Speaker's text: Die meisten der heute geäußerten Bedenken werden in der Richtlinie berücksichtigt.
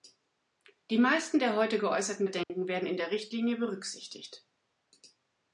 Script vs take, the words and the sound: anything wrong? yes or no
yes